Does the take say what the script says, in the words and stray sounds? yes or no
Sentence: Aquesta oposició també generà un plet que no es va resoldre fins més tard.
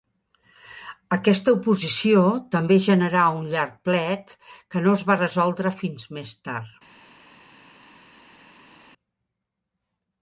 no